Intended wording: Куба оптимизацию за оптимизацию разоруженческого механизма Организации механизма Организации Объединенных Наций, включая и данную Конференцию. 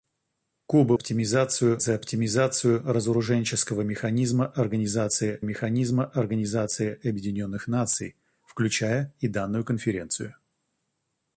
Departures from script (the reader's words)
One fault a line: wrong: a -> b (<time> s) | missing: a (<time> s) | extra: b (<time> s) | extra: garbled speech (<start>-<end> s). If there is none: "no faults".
no faults